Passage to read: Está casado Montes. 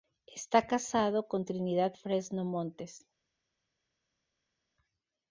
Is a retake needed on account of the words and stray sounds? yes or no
yes